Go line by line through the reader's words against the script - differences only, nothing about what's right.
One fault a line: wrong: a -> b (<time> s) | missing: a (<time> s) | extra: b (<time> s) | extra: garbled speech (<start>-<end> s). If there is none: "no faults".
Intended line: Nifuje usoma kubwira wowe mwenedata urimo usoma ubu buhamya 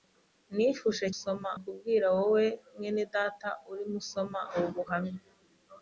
no faults